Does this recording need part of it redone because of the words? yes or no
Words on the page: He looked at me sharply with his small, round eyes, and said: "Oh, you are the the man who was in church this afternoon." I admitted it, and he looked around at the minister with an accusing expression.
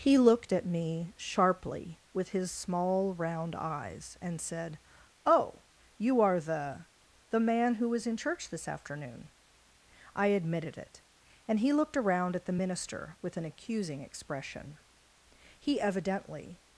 yes